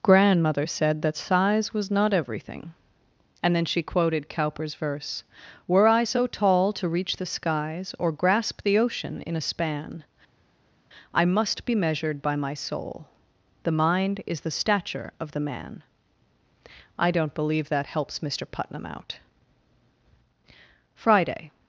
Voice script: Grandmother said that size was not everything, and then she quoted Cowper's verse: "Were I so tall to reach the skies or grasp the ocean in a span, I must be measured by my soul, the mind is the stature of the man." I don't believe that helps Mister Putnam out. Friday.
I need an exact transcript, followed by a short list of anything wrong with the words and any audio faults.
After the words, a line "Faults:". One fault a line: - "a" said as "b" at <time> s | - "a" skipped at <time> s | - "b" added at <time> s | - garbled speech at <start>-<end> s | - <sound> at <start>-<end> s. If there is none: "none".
Grandmother said that size was not everything, and then she quoted Cowper's verse: "Were I so tall to reach the skies or grasp the ocean in a span, I must be measured by my soul, the mind is the stature of the man." I don't believe that helps Mister Putnam out. Friday.
Faults:
none